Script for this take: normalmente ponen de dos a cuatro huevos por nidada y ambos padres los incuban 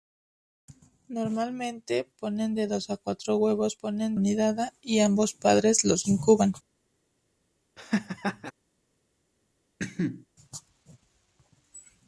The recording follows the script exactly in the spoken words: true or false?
false